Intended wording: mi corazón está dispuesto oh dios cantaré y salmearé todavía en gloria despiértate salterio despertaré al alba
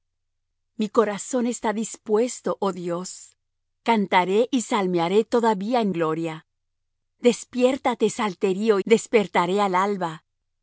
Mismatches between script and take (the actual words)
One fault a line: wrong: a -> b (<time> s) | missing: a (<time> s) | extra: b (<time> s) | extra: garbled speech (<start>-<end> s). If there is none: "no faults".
no faults